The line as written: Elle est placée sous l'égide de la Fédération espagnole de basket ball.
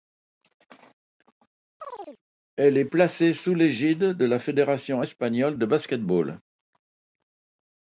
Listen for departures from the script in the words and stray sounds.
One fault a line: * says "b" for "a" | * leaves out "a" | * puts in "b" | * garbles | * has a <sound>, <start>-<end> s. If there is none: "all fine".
* has a chirp, 1.8-2.2 s